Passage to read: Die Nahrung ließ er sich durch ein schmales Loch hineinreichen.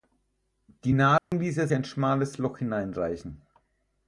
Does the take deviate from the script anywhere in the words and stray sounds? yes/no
yes